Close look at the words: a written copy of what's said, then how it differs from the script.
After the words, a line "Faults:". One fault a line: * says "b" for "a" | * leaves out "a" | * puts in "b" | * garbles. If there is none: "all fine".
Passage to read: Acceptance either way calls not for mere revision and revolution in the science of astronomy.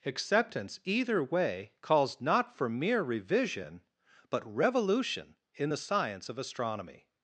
Acceptance either way calls not for mere revision but revolution in the science of astronomy.
Faults:
* says "but" for "and"